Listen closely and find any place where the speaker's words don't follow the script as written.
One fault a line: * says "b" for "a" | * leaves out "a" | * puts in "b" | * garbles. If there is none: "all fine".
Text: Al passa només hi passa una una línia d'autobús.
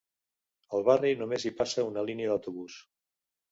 * says "barri" for "passa"
* leaves out "una"